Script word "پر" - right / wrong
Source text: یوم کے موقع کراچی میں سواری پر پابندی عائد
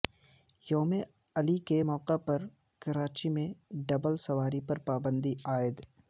right